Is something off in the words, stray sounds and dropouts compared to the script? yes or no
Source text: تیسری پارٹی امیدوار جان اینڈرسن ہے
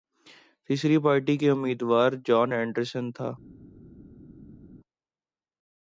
yes